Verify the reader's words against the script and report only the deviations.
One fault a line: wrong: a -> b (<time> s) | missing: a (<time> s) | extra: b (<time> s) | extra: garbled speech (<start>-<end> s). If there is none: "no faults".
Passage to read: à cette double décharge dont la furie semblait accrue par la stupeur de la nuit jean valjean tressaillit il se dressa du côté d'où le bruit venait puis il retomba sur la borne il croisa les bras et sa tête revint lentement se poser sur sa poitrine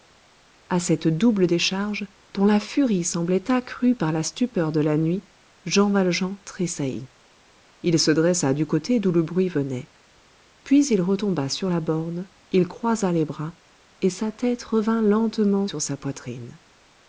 missing: se poser (15.7 s)